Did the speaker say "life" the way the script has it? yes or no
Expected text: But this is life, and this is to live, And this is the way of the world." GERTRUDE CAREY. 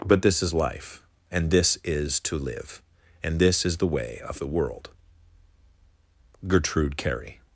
yes